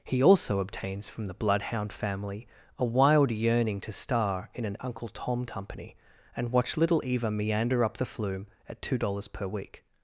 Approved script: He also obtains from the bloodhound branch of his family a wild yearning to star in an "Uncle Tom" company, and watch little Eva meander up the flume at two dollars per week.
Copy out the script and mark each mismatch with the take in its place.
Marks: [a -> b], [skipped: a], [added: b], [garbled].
He also obtains from the bloodhound [skipped: branch of his] family a wild yearning to star in an "Uncle Tom" company, and watch little Eva meander up the flume at two dollars per week.